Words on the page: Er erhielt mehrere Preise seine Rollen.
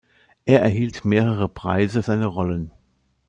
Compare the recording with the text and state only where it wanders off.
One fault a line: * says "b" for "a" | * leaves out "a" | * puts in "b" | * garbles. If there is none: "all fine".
all fine